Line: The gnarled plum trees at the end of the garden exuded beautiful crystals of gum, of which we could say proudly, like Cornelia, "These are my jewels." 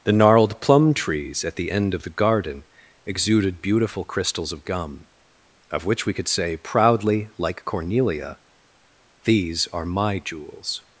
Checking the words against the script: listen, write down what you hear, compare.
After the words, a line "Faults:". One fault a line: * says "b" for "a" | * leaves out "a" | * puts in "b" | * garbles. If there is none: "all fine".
The gnarled plum trees at the end of the garden exuded beautiful crystals of gum, of which we could say proudly, like Cornelia, "These are my jewels."
Faults:
all fine